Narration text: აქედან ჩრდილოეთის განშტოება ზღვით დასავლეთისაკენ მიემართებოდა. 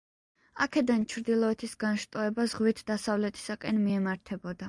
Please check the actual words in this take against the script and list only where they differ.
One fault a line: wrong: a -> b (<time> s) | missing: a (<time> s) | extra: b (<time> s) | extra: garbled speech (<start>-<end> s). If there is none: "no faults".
no faults